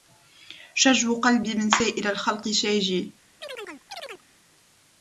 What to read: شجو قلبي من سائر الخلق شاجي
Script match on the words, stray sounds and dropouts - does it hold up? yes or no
no